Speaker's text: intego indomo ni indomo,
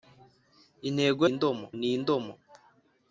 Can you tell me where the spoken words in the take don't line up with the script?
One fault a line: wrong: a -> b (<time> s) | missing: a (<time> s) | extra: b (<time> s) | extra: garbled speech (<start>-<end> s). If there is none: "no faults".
no faults